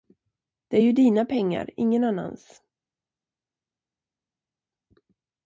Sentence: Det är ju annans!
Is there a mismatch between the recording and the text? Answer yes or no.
yes